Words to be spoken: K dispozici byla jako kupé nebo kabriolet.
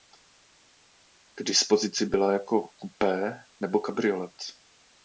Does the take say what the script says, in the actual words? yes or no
yes